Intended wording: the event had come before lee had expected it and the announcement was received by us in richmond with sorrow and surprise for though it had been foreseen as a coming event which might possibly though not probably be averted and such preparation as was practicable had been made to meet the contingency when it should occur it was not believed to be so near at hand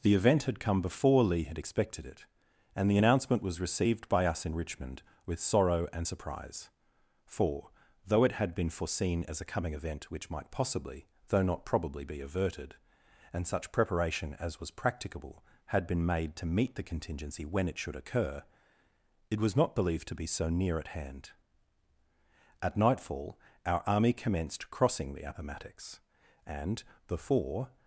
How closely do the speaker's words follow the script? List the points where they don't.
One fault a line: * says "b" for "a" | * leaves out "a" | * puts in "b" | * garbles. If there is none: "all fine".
* puts in "at nightfall our army commenced crossing the appomattox and before"